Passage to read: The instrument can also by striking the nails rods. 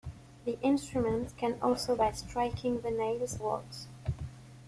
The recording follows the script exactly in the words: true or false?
true